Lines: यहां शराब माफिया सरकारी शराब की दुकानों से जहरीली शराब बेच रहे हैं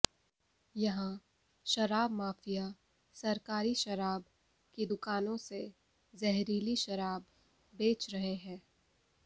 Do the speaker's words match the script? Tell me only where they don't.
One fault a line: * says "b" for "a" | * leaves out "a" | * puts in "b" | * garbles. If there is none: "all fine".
all fine